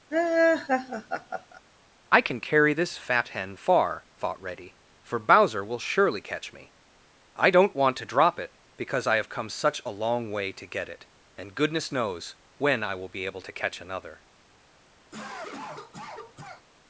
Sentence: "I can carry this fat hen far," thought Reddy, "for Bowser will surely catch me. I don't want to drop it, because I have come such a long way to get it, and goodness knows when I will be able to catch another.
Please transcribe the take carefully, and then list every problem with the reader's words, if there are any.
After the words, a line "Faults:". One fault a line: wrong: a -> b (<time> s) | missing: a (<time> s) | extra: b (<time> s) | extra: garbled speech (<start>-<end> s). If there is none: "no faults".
"I can carry this fat hen far," thought Reddy, "for Bowser will surely catch me. I don't want to drop it, because I have come such a long way to get it, and goodness knows when I will be able to catch another.
Faults:
no faults